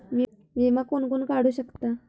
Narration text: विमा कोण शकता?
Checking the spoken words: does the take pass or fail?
fail